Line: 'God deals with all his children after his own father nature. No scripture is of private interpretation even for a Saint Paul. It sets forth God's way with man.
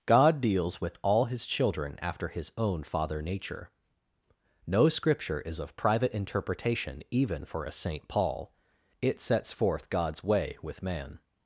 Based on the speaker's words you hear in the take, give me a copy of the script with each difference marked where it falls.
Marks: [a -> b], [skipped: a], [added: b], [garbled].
'God deals with all his children after his own father nature. No scripture is of private interpretation even for a Saint Paul. It sets forth God's way with man.